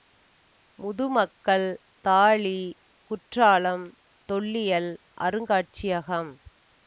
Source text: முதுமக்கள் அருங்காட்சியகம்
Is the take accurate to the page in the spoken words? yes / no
no